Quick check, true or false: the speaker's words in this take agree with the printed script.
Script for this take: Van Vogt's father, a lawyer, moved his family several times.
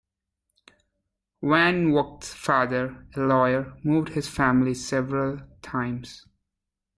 true